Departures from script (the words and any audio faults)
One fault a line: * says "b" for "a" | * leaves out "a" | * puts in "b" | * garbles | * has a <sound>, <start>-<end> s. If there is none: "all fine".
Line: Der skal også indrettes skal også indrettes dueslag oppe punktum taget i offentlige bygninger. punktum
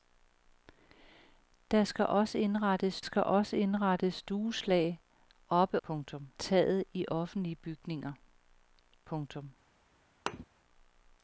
* has a thud, 10.3-10.5 s